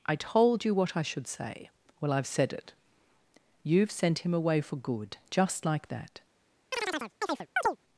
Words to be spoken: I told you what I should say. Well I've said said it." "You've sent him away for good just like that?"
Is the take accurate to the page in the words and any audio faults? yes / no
no